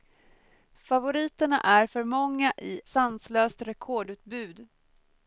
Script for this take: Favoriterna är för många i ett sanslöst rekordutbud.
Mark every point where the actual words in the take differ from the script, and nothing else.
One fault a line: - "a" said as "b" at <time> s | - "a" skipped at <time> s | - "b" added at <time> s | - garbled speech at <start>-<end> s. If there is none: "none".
- "ett" skipped at 2.8 s